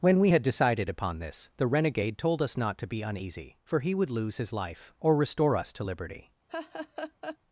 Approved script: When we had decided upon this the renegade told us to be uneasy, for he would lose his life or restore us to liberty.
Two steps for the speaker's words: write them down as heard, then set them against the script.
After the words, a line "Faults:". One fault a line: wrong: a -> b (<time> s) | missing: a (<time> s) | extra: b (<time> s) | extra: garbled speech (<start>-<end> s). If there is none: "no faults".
When we had decided upon this the renegade told us not to be uneasy, for he would lose his life or restore us to liberty.
Faults:
extra: not (2.6 s)